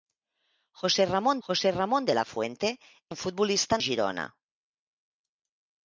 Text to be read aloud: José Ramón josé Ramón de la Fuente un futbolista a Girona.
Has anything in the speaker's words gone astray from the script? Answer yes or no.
no